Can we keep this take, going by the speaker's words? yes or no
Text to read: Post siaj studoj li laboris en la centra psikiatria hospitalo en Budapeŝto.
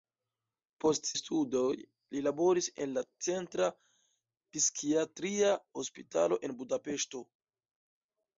no